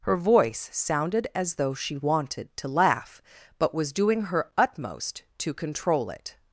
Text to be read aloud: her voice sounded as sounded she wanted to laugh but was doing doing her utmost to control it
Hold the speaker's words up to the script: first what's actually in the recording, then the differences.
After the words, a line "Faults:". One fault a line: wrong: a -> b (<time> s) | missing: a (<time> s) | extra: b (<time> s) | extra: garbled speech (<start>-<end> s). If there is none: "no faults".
her voice sounded as though she wanted to laugh but was doing her utmost to control it
Faults:
wrong: sounded -> though (1.6 s)
missing: doing (4.2 s)